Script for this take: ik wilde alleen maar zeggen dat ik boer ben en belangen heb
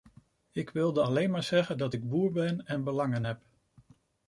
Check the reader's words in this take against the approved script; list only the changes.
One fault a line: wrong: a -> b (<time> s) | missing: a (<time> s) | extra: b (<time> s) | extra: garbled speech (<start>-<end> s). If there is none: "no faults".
no faults